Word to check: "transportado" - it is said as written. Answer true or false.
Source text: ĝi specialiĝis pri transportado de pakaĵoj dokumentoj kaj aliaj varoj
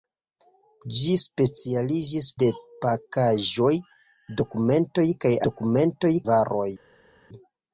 false